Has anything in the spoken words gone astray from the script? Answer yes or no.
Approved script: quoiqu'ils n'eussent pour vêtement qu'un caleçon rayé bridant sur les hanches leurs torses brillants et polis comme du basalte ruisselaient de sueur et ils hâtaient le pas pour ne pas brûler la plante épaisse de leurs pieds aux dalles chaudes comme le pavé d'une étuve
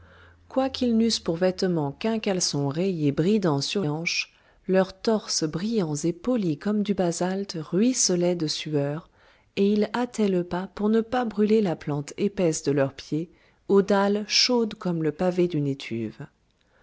yes